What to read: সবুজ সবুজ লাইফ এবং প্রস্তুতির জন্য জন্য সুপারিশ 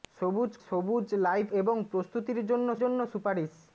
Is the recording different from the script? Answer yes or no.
no